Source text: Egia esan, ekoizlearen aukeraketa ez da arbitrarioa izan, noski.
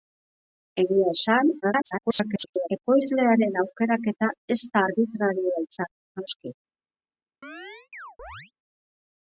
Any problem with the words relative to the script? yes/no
yes